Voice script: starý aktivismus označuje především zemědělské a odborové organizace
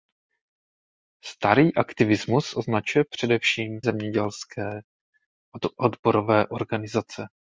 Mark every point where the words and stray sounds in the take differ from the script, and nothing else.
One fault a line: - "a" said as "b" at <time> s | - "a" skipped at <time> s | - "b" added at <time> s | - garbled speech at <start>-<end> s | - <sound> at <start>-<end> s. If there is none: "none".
none